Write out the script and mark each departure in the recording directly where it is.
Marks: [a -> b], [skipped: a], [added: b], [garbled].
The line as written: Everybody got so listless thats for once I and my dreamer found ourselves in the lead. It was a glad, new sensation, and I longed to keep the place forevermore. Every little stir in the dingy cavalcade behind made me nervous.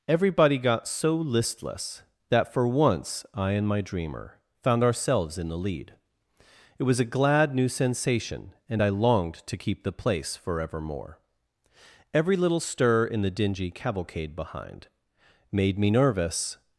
Everybody got so listless [thats -> that] for once I and my dreamer found ourselves in the lead. It was a glad, new sensation, and I longed to keep the place forevermore. Every little stir in the dingy cavalcade behind made me nervous.